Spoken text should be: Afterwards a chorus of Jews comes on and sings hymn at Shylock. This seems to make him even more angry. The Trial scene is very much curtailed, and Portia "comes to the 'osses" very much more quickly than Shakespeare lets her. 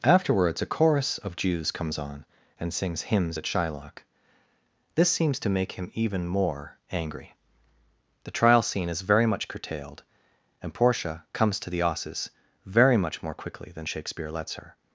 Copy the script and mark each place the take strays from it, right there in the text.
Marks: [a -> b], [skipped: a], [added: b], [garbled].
Afterwards a chorus of Jews comes on and sings [hymn -> hymns] at Shylock. This seems to make him even more angry. The Trial scene is very much curtailed, and Portia "comes to the 'osses" very much more quickly than Shakespeare lets her.